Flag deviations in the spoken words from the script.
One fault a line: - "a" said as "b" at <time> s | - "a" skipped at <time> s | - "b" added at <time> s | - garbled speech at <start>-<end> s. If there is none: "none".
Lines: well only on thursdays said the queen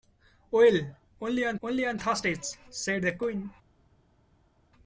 - "only on" added at 1.6 s